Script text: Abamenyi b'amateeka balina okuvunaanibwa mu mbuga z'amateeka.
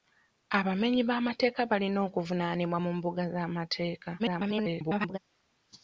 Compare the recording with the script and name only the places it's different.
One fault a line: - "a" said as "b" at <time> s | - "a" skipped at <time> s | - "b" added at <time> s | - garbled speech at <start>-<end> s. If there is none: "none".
- garbled speech at 4.2-5.2 s